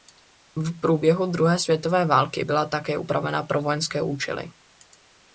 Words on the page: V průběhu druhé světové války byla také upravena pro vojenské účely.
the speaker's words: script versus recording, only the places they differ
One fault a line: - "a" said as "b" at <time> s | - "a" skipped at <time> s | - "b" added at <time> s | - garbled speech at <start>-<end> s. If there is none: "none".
none